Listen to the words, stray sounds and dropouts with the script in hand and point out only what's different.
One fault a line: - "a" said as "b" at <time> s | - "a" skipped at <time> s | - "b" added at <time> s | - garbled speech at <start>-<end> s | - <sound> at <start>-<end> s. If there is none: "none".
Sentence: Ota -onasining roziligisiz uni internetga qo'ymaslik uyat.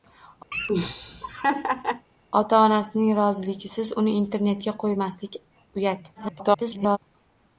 - laugh at 0.5-2.1 s
- garbled speech at 6.1-7.0 s